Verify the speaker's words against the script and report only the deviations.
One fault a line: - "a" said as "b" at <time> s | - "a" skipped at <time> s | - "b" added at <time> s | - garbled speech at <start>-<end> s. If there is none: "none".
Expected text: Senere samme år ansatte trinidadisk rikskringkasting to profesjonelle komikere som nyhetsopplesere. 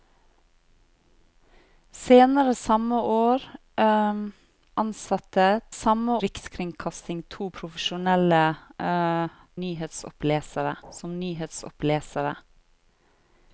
- "trinidadisk" said as "samme" at 5.7 s
- "komikere" said as "nyhetsopplesere" at 9.6 s